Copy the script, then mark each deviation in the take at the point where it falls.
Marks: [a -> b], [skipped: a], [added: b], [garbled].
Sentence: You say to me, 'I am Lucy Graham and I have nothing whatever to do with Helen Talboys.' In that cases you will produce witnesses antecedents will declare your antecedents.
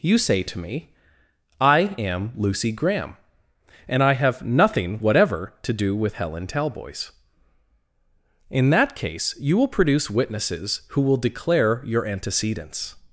You say to me, 'I am Lucy Graham and I have nothing whatever to do with Helen Talboys.' In that [cases -> case] you will produce witnesses [antecedents -> who] will declare your antecedents.